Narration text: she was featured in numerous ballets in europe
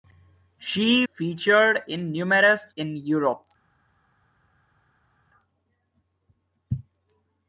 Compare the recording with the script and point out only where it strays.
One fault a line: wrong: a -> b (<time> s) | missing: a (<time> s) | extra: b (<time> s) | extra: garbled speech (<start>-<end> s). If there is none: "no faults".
missing: was (1.1 s)
missing: ballets (2.7 s)